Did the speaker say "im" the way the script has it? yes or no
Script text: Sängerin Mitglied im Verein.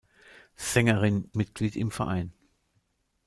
yes